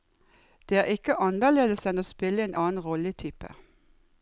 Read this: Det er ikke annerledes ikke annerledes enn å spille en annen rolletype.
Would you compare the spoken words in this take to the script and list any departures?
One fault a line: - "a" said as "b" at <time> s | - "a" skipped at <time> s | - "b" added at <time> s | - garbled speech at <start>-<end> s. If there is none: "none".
- "ikke annerledes" skipped at 1.9 s